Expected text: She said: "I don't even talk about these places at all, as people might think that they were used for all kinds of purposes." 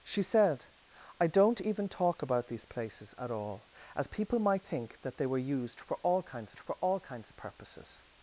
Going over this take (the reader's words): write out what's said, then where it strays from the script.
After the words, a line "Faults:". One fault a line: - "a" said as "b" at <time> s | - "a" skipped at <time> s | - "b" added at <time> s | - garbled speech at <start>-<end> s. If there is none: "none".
She said: "I don't even talk about these places at all, as people might think that they were used for all kinds for all kinds of purposes."
Faults:
- "for all kinds" added at 6.6 s